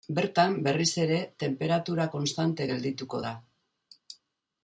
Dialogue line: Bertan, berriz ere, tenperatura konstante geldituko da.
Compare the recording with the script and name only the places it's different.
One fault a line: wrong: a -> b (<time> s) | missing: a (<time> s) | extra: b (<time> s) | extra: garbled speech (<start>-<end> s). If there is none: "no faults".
no faults